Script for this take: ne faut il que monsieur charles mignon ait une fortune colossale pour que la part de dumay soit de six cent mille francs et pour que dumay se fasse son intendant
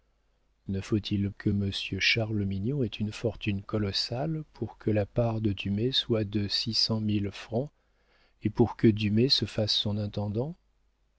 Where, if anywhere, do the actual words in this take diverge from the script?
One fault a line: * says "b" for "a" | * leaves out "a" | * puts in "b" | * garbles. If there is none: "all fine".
all fine